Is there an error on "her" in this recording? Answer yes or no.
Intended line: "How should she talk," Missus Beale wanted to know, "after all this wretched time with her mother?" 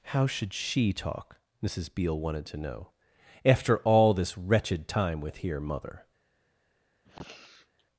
yes